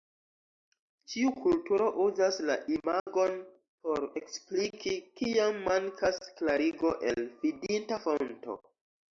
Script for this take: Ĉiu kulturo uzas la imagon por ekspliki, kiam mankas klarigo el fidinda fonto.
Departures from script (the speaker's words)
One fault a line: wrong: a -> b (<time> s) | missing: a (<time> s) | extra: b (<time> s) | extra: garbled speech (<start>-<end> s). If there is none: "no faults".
no faults